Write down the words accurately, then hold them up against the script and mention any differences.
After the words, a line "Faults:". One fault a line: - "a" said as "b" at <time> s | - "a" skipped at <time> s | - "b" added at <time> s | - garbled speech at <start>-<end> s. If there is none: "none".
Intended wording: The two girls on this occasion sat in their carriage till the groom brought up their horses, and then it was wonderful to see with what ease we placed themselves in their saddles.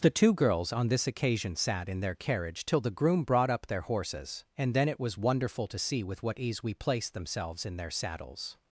The two girls on this occasion sat in their carriage till the groom brought up their horses, and then it was wonderful to see with what ease we placed themselves in their saddles.
Faults:
none